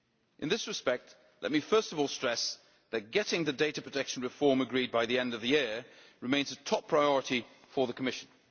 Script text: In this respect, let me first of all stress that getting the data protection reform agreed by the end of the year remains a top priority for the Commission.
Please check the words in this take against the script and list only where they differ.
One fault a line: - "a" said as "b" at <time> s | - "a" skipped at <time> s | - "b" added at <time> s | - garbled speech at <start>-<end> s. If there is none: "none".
none